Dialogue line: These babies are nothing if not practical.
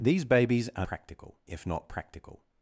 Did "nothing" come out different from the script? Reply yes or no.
yes